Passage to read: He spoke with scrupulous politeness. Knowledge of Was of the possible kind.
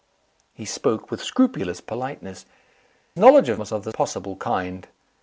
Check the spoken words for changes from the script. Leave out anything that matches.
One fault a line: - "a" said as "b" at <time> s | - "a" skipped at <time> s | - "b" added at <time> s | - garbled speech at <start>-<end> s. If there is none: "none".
none